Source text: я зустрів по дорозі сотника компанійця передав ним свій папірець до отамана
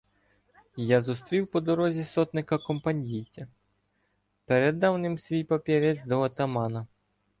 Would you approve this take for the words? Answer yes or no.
yes